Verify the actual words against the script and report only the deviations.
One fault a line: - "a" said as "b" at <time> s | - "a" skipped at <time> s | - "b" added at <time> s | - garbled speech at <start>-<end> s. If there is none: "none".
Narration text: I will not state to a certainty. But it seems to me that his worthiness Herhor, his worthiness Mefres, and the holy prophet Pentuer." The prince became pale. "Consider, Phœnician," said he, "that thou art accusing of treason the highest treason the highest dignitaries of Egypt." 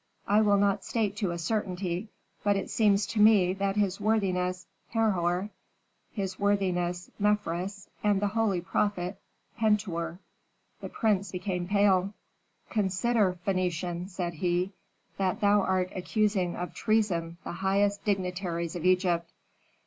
- "treason the highest" skipped at 18.0 s